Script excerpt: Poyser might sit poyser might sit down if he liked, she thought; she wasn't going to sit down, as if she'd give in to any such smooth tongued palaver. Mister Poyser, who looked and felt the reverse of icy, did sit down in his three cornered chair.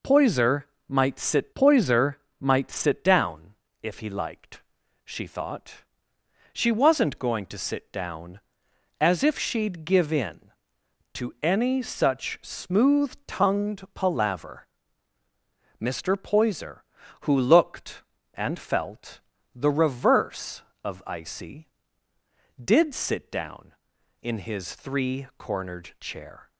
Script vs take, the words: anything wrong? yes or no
no